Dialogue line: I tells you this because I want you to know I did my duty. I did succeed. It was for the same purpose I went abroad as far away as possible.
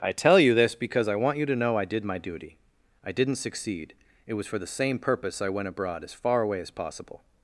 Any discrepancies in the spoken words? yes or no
yes